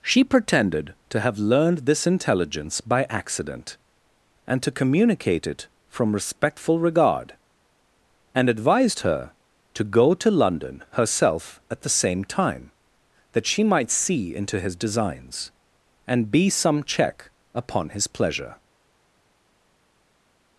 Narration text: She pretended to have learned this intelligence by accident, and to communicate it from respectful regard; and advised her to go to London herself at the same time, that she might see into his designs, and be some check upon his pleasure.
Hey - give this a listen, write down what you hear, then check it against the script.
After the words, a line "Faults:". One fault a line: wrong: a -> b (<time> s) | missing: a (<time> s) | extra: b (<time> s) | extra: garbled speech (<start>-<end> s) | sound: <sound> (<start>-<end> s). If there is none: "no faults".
She pretended to have learned this intelligence by accident, and to communicate it from respectful regard; and advised her to go to London herself at the same time, that she might see into his designs, and be some check upon his pleasure.
Faults:
no faults